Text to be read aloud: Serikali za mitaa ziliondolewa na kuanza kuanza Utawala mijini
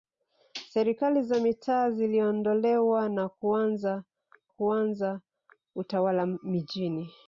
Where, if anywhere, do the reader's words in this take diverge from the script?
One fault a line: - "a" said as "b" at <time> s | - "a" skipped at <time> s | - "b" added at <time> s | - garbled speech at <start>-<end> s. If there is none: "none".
none